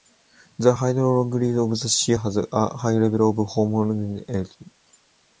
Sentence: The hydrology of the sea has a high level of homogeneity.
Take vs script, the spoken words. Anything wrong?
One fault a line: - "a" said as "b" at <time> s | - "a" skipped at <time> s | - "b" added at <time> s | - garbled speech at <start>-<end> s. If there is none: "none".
none